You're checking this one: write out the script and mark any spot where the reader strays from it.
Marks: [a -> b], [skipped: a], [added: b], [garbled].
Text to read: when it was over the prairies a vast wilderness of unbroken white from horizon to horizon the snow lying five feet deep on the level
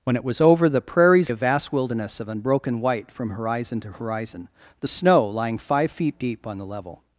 when it was over the prairies a vast wilderness of unbroken white from horizon to horizon the snow lying five feet deep on the level